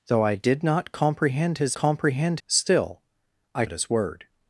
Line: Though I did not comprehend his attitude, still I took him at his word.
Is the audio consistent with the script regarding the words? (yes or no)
no